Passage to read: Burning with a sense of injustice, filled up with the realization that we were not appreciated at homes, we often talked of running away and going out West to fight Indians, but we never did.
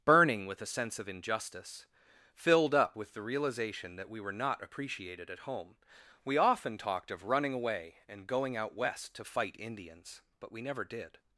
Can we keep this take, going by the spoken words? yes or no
no